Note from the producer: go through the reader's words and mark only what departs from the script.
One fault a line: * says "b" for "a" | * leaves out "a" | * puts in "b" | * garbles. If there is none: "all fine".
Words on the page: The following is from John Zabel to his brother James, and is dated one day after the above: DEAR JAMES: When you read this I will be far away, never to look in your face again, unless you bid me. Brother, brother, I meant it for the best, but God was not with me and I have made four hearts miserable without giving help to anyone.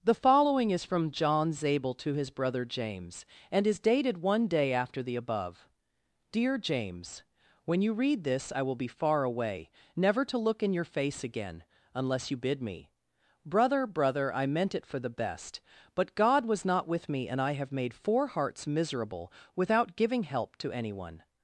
all fine